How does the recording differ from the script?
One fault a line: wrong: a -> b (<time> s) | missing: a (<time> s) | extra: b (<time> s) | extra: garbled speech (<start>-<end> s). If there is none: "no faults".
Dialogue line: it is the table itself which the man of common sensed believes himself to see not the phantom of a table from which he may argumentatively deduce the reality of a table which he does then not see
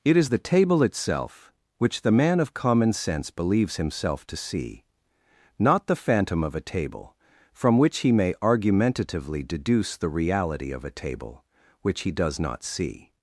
wrong: sensed -> sense (2.9 s)
missing: then (12.4 s)